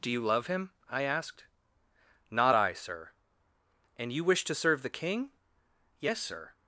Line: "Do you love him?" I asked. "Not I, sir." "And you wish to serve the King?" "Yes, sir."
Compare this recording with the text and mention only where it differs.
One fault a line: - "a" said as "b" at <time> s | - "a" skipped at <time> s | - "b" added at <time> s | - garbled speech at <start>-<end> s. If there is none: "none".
none